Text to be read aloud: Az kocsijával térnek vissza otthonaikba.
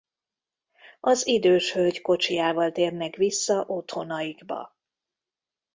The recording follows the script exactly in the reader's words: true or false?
false